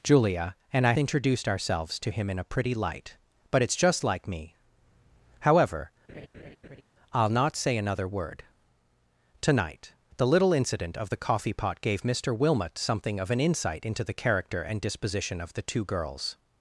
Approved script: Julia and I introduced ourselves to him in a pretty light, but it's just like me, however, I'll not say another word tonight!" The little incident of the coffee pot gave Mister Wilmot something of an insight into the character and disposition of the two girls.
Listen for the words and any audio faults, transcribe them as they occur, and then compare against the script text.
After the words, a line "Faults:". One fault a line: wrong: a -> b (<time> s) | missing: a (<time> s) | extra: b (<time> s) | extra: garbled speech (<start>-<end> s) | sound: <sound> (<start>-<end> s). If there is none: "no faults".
Julia and I introduced ourselves to him in a pretty light, but it's just like me, however, I'll not say another word tonight!" The little incident of the coffee pot gave Mister Wilmot something of an insight into the character and disposition of the two girls.
Faults:
sound: laugh (6.1-6.8 s)